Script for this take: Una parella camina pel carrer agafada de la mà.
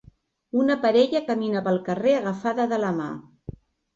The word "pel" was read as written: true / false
true